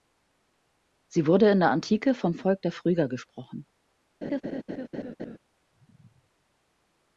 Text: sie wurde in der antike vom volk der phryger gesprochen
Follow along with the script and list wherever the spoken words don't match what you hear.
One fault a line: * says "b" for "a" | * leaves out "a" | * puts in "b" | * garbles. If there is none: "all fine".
all fine